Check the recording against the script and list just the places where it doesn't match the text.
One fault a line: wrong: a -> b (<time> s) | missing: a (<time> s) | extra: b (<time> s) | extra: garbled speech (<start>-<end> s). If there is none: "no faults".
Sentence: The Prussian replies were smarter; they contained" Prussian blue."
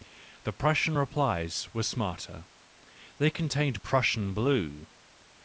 no faults